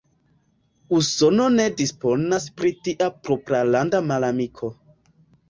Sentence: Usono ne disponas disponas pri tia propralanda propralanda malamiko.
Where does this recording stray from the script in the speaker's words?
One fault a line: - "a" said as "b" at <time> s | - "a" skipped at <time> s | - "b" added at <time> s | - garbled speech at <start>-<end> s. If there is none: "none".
- "disponas" skipped at 2.5 s
- "propralanda" skipped at 4.0 s